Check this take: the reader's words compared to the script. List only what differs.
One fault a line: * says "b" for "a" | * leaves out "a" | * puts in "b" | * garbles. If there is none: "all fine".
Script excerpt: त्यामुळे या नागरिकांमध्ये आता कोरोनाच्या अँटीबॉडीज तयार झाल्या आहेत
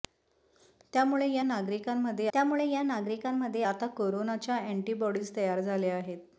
* puts in "त्यामुळे या नागरिकांमध्ये"